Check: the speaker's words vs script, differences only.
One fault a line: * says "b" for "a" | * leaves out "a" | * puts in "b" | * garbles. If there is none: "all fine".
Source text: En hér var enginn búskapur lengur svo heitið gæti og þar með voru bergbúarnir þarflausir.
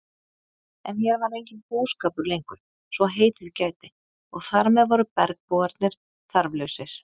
all fine